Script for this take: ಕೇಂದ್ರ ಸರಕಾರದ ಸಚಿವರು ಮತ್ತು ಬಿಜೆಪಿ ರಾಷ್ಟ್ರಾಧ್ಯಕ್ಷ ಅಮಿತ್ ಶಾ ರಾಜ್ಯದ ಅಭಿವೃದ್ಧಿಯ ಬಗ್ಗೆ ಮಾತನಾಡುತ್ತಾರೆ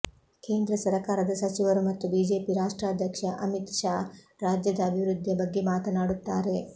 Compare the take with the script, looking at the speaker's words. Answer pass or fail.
pass